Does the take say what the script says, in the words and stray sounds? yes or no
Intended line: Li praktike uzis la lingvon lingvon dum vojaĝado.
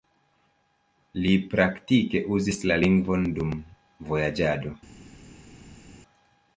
no